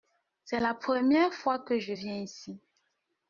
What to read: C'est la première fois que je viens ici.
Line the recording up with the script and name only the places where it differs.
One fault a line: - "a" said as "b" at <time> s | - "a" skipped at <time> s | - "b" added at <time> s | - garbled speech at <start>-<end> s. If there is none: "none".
none